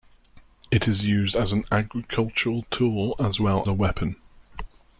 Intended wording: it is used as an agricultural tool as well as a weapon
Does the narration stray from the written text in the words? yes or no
yes